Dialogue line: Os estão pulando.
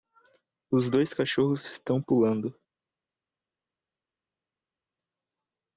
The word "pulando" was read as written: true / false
true